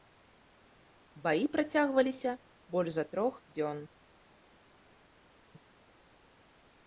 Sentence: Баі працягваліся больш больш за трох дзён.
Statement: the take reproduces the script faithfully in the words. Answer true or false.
false